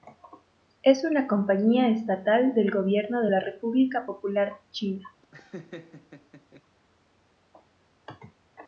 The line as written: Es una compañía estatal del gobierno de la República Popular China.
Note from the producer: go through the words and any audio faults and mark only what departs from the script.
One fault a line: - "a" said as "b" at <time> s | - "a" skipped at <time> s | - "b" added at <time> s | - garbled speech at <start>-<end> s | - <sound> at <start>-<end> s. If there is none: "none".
- laugh at 5.2-6.6 s